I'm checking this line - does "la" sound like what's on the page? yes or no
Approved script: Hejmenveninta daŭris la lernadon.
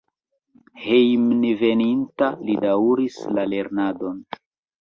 yes